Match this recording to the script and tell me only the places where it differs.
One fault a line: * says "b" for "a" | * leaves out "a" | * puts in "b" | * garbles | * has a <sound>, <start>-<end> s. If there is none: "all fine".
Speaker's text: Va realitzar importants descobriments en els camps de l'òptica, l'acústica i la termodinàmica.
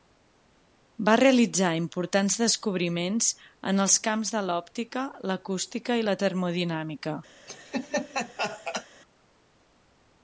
* has a laugh, 7.5-8.9 s